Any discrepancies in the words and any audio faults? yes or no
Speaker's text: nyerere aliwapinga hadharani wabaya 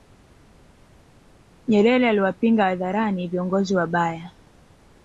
yes